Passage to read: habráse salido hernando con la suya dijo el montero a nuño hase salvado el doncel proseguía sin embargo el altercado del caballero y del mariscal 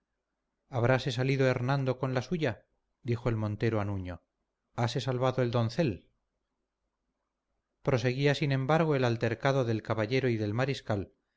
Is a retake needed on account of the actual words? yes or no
no